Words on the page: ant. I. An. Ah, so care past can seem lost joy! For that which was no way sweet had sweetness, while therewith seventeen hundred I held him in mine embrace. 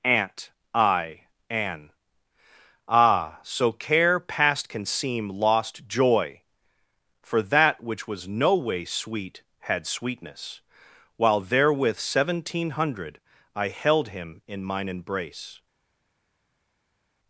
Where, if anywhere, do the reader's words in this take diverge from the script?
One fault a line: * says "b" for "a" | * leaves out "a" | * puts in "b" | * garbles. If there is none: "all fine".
all fine